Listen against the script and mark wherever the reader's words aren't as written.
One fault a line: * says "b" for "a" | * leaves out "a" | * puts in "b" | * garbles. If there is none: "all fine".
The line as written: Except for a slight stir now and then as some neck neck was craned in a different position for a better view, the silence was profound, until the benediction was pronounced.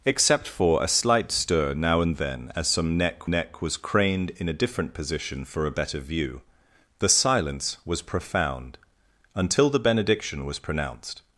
all fine